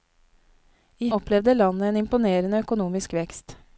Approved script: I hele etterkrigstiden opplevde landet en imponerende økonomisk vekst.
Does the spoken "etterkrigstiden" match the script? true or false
false